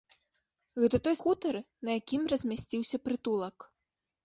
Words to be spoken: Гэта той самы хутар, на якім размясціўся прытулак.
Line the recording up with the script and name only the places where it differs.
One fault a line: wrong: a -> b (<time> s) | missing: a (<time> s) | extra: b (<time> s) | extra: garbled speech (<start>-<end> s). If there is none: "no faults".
missing: самы (1.1 s)